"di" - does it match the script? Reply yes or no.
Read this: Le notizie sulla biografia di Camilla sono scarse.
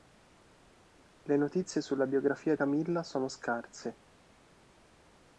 no